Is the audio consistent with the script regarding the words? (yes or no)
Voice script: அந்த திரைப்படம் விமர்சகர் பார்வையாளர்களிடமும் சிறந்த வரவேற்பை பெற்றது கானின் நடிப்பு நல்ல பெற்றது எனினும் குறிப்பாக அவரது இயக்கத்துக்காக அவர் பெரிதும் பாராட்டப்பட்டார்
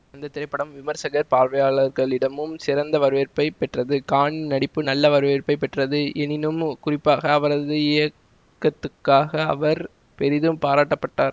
no